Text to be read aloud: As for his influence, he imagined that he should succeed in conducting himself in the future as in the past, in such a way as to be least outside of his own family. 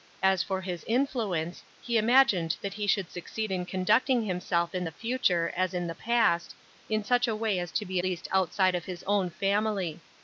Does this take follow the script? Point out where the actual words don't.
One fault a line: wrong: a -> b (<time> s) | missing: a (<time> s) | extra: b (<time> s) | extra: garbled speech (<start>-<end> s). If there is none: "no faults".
no faults